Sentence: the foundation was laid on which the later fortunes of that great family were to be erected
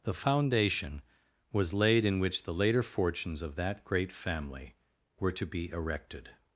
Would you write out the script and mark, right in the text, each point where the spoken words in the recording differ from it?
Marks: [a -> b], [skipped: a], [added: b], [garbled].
the foundation was laid [on -> in] which the later fortunes of that great family were to be erected